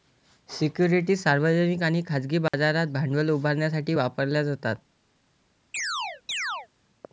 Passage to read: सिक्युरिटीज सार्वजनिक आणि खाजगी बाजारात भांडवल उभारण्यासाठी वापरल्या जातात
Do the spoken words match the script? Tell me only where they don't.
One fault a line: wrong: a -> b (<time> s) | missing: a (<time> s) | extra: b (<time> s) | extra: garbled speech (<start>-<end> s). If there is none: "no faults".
no faults